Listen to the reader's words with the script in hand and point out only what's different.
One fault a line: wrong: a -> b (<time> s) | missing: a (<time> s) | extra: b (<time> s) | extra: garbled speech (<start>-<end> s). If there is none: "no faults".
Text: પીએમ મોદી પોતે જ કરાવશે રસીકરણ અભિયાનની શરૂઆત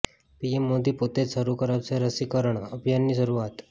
extra: શરૂ (1.3 s)